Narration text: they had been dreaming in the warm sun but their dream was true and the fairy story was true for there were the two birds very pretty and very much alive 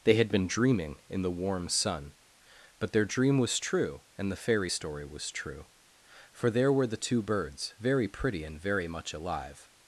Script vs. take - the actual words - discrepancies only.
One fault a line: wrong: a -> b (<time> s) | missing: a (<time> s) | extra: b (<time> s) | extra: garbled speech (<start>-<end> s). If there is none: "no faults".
no faults